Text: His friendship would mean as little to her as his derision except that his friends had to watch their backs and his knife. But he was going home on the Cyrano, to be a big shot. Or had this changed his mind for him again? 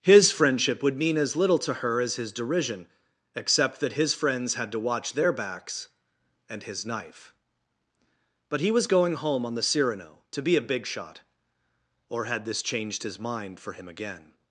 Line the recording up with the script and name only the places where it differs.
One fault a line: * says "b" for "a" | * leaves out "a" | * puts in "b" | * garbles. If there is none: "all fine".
all fine